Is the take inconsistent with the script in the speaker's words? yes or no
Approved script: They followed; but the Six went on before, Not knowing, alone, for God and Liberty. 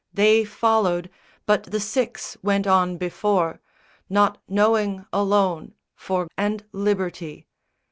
yes